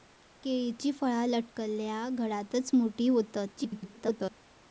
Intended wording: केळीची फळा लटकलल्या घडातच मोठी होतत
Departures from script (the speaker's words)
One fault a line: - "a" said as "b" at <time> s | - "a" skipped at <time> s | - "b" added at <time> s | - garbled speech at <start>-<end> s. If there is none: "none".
- garbled speech at 3.6-4.4 s